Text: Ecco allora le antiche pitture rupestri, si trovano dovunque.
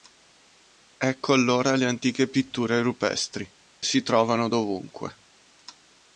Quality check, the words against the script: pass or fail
pass